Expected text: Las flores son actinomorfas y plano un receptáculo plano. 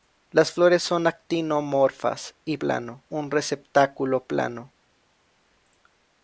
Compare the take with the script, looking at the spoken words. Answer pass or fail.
pass